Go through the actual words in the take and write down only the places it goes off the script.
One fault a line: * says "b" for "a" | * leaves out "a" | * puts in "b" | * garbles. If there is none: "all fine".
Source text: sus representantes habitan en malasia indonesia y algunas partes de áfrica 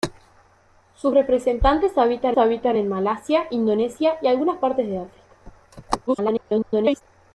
* puts in "habitan"
* garbles